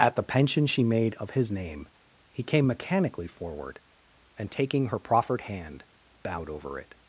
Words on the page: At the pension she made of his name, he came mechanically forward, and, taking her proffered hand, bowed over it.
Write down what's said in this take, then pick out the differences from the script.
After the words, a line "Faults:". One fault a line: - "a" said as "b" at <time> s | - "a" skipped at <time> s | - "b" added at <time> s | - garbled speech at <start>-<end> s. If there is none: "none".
At the pension she made of his name, he came mechanically forward, and, taking her proffered hand, bowed over it.
Faults:
none